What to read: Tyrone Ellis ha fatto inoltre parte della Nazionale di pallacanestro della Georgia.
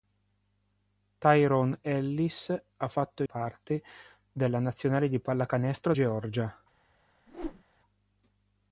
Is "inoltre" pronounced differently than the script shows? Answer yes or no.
yes